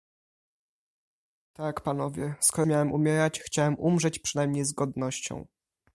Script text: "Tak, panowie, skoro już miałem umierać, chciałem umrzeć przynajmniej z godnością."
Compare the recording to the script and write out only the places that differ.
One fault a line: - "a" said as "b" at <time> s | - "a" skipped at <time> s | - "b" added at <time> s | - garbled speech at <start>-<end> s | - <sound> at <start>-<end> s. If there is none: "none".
- "już" skipped at 2.7 s